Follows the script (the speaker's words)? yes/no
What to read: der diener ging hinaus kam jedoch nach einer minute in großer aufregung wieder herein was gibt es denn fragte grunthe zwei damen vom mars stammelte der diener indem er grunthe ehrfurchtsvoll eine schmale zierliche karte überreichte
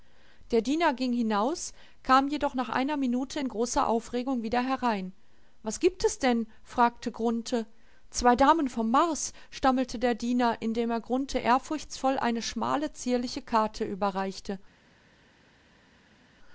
yes